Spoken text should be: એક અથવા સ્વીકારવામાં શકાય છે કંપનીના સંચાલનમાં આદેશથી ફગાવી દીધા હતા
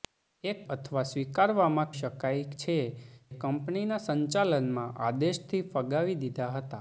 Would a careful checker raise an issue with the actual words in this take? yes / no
no